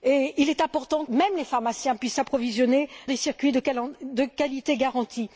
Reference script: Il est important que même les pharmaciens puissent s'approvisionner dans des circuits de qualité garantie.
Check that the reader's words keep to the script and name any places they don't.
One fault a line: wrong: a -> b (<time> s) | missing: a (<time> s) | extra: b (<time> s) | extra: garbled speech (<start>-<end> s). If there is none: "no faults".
missing: que (1.1 s)
missing: dans (2.9 s)